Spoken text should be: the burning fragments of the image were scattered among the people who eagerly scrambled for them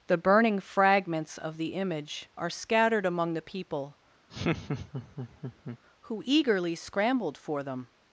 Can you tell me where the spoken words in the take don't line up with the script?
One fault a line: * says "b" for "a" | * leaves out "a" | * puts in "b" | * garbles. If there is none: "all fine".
* says "are" for "were"